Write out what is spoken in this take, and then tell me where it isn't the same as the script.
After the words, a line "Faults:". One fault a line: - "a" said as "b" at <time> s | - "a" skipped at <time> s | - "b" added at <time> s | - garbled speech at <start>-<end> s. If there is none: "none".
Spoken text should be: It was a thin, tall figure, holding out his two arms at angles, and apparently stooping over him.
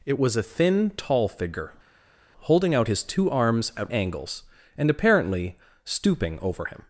It was a thin, tall figure, holding out his two arms at angles, and apparently stooping over him.
Faults:
none